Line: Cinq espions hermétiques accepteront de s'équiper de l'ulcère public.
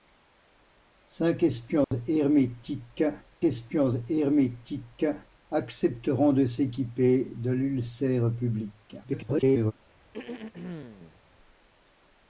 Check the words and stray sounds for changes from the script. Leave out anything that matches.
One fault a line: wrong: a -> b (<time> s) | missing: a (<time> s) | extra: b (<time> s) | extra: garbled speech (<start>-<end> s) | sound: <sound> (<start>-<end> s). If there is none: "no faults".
sound: dropout (1.8-1.9 s)
extra: espions hermétiques (3.4 s)
extra: garbled speech (9.0-9.7 s)
sound: throat clearing (10.1-11.2 s)